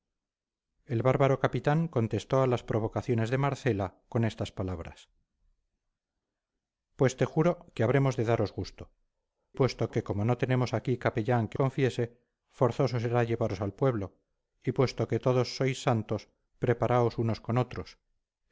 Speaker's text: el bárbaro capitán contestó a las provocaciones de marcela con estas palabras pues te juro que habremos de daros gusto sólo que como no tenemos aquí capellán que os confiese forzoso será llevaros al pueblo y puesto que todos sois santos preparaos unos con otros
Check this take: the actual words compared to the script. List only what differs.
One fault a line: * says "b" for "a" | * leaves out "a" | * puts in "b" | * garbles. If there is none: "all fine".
* says "puesto" for "sólo"
* leaves out "os"